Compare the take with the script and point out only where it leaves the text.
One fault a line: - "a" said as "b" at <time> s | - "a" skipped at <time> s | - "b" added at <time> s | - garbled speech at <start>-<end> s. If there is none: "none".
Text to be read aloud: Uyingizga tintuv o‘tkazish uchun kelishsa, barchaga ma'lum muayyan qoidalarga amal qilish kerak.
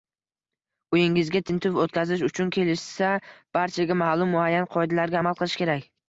none